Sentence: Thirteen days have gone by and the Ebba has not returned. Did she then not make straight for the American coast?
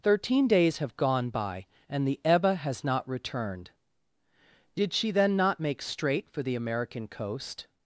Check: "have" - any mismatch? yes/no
no